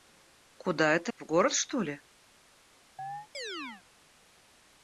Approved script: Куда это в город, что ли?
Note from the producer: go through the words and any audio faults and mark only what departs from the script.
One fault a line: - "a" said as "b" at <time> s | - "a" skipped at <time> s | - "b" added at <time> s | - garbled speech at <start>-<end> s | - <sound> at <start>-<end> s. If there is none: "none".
- chirp at 3.0-3.8 s